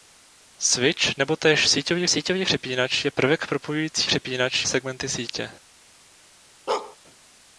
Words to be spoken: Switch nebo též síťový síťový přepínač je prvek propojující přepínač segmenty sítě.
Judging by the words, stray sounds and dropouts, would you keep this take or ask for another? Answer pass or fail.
fail